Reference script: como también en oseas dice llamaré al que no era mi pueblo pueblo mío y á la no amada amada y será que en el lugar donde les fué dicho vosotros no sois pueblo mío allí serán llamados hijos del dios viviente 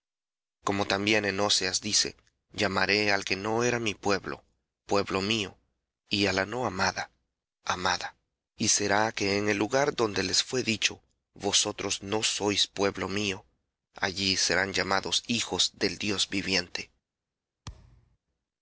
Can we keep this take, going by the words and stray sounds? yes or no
no